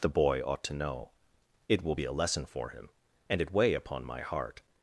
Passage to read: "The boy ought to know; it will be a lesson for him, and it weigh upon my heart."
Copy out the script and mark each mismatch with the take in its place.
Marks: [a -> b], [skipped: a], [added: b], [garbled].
"The boy ought to know; it will be a lesson for him, and it weigh upon my heart."